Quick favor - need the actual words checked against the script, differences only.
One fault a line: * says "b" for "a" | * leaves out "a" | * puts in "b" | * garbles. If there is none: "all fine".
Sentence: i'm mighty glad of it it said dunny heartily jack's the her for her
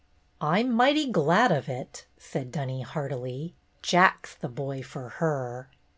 * leaves out "it"
* says "boy" for "her"